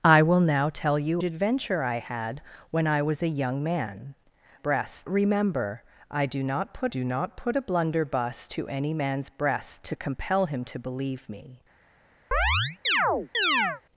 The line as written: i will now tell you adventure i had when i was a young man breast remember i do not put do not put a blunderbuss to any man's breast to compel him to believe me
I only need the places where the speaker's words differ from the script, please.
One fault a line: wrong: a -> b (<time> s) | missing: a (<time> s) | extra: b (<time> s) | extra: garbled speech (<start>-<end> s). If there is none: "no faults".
no faults